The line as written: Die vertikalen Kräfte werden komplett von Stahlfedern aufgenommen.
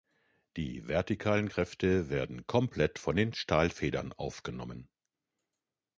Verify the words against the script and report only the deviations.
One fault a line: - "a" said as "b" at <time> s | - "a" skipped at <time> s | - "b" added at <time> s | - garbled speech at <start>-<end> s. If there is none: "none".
- "den" added at 3.2 s